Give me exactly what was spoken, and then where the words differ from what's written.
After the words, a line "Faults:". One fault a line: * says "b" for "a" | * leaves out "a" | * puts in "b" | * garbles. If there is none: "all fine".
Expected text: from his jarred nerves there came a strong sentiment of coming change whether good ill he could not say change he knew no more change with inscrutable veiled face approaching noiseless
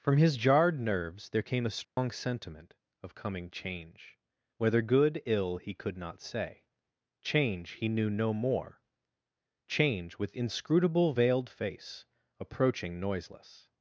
from his jarred nerves there came a strong sentiment of coming change whether good ill he could not say change he knew no more change with inscrutable veiled face approaching noiseless
Faults:
all fine